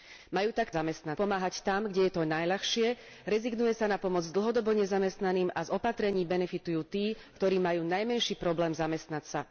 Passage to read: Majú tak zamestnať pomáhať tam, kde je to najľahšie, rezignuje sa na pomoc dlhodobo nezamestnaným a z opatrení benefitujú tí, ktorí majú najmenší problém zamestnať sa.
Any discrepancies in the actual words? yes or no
no